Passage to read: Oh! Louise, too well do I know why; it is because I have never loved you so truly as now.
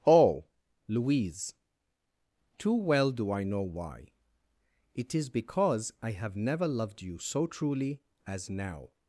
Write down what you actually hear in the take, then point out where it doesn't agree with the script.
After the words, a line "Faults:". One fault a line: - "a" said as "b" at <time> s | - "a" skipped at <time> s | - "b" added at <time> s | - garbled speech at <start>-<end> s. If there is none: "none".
Oh! Louise, too well do I know why; it is because I have never loved you so truly as now.
Faults:
none